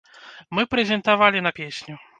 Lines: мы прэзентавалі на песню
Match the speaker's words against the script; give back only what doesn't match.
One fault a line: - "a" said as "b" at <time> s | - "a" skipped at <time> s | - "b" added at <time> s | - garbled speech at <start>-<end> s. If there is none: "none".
none